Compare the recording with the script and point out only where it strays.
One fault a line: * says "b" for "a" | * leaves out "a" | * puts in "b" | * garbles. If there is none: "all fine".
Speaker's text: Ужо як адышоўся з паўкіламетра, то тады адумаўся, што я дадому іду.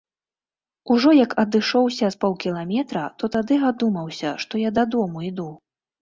all fine